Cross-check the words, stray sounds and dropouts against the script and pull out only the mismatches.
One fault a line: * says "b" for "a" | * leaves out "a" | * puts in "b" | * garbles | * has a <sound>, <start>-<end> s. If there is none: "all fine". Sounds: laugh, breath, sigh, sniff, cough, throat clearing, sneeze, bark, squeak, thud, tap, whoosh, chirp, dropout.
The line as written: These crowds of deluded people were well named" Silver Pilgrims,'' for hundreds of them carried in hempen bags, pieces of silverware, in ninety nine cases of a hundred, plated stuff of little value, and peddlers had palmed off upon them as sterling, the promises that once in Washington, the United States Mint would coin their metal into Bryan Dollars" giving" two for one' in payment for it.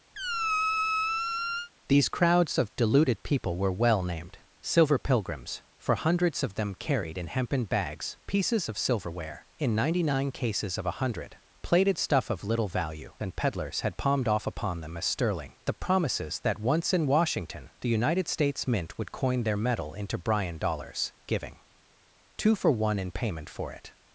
* has a squeak, 0.1-1.7 s